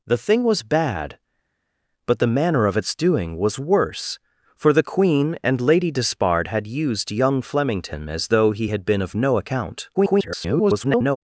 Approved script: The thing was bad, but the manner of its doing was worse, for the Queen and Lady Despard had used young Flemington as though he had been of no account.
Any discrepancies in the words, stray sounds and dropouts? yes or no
yes